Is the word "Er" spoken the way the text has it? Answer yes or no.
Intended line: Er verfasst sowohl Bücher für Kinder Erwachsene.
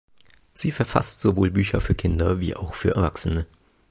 no